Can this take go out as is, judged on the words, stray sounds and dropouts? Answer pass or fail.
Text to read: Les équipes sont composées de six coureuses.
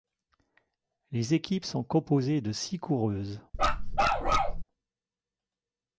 fail